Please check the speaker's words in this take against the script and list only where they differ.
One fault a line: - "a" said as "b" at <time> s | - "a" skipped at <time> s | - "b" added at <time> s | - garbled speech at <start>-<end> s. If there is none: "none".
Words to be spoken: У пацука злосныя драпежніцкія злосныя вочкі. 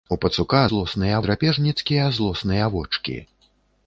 none